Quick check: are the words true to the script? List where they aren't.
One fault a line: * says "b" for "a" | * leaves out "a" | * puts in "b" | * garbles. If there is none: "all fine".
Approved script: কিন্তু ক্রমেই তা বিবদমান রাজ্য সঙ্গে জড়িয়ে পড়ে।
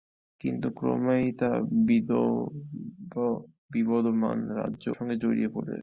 all fine